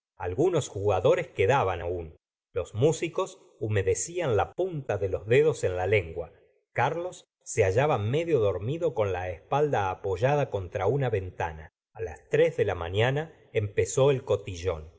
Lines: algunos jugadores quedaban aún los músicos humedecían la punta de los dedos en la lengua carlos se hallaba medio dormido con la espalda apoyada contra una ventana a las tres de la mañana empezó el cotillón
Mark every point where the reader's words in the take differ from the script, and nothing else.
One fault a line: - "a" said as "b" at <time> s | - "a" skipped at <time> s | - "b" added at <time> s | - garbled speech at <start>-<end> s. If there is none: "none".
none